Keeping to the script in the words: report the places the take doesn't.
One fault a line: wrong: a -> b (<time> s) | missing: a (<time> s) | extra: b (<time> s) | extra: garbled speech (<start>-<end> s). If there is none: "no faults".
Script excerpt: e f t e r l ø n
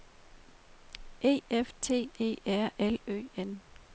no faults